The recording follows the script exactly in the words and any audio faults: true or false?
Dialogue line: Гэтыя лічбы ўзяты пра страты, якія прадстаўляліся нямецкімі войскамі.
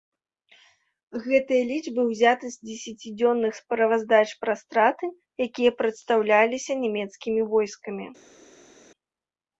false